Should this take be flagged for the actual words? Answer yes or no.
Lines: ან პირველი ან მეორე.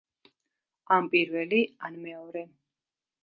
no